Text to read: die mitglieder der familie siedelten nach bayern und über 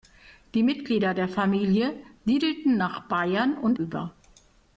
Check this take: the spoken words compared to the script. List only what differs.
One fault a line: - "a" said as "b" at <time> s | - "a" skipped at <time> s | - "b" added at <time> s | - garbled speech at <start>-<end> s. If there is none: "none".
none